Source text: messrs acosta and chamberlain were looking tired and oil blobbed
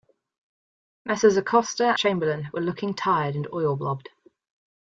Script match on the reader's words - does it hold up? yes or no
no